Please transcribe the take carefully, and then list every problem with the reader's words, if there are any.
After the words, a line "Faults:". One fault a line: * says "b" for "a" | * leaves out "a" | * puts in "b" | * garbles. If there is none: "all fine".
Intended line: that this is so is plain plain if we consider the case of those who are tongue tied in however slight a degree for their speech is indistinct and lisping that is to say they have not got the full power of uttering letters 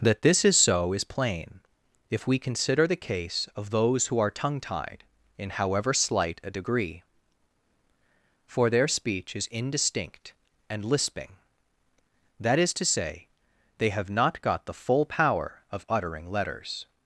that this is so is plain if we consider the case of those who are tongue tied in however slight a degree for their speech is indistinct and lisping that is to say they have not got the full power of uttering letters
Faults:
* leaves out "plain"